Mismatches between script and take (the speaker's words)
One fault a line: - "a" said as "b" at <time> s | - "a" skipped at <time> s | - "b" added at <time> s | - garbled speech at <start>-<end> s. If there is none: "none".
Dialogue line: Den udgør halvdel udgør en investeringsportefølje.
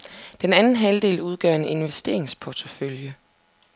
- "udgør" said as "anden" at 0.5 s